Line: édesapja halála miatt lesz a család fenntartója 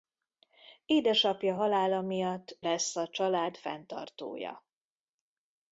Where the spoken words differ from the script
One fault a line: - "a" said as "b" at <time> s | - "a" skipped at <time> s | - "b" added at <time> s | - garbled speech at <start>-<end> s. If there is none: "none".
none